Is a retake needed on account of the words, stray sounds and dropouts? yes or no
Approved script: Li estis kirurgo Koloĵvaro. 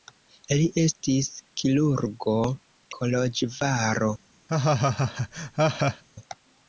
yes